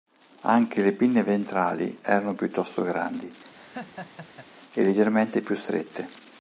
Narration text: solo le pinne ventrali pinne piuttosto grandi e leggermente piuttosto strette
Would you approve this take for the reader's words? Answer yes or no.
no